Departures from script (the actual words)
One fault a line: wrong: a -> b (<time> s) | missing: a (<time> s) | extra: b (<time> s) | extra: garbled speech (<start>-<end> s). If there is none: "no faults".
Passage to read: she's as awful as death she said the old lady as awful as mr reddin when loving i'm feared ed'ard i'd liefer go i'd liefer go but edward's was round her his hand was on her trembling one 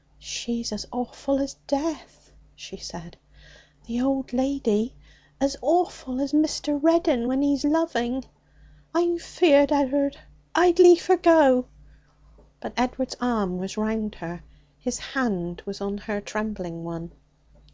extra: he's (7.4 s)
missing: i'd liefer go (11.7 s)
extra: arm (13.2 s)